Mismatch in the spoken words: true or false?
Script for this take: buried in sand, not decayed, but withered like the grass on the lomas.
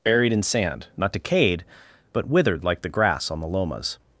false